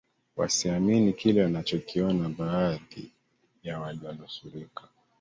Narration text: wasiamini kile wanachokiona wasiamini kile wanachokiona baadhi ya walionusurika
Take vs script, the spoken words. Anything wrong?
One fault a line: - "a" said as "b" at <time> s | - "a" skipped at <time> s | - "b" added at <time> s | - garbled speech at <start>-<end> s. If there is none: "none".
- "wasiamini kile wanachokiona" skipped at 2.3 s